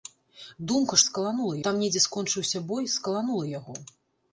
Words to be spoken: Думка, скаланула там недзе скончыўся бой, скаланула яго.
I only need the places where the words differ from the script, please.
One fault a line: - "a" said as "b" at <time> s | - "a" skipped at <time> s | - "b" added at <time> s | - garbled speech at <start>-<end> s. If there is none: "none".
none